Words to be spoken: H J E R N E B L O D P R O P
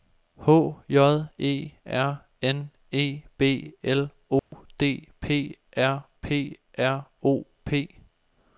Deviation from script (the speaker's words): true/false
true